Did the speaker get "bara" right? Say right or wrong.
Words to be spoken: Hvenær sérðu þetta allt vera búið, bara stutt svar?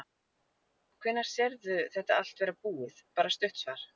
right